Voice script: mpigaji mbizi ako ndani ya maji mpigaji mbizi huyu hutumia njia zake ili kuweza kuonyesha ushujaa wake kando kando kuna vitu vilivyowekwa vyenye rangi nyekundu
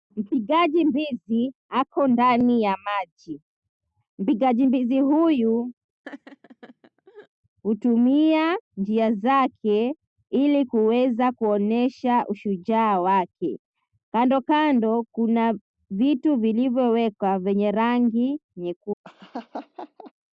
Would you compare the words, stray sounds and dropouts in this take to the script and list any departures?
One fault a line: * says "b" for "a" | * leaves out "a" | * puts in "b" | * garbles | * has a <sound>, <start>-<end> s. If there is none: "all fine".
* has a laugh, 6.0-7.3 s
* has a laugh, 19.0-20.1 s